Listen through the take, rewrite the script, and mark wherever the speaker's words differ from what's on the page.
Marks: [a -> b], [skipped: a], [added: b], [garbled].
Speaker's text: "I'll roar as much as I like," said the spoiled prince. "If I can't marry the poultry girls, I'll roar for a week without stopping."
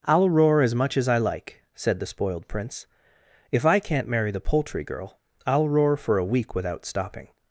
"I'll roar as much as I like," said the spoiled prince. "If I can't marry the poultry [girls, -> girl] I'll roar for a week without stopping."